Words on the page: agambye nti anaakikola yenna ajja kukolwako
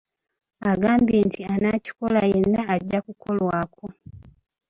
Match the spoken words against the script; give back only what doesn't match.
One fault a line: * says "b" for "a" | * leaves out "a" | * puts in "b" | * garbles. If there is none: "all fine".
all fine